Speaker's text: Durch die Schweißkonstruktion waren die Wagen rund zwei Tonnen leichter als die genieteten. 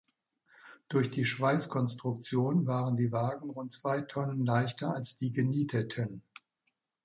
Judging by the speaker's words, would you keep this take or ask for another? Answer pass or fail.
pass